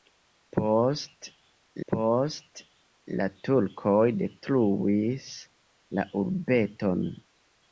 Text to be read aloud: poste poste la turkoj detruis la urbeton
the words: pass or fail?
pass